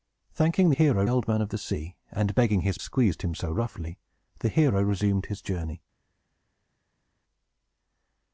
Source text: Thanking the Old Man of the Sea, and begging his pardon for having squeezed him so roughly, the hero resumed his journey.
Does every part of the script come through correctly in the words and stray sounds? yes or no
no